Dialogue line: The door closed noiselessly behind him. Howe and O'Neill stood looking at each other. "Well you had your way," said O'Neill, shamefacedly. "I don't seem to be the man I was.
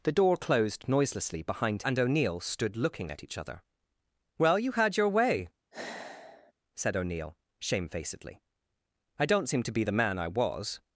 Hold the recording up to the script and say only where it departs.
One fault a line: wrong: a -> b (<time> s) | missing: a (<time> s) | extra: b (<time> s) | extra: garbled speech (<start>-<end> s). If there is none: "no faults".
missing: him Howe (1.8 s)